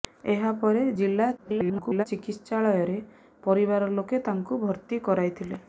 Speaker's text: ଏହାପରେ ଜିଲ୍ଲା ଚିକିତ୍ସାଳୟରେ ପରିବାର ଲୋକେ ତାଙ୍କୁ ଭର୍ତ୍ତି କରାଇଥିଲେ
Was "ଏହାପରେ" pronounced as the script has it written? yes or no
yes